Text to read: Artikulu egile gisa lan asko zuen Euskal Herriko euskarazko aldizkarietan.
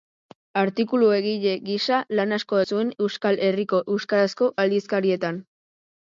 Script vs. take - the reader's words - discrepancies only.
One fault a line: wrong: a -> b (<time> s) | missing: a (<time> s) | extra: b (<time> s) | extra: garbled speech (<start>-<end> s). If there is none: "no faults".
no faults